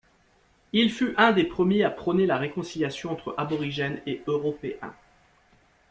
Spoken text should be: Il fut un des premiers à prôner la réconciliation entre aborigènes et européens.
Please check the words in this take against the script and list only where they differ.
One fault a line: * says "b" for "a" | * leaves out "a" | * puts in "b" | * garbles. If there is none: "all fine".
all fine